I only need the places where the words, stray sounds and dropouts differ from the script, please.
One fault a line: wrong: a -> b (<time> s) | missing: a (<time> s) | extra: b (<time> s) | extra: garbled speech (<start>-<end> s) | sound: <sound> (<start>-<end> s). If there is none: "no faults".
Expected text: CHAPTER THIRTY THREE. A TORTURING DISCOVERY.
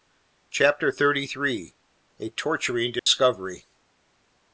sound: dropout (3.0-3.1 s)